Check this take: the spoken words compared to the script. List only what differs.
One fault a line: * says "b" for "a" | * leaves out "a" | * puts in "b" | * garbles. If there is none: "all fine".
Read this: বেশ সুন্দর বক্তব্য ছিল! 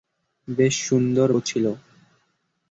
* leaves out "বক্তব্য"